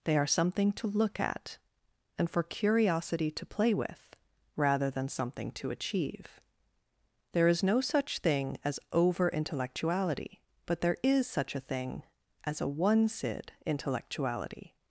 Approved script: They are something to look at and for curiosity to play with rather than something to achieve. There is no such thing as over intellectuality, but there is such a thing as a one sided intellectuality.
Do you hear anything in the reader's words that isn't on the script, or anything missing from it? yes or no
yes